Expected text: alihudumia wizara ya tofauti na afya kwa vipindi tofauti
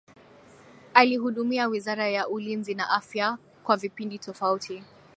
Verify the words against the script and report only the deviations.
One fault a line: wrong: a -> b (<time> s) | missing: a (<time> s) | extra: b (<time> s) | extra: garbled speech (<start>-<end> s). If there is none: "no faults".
wrong: tofauti -> ulinzi (2.3 s)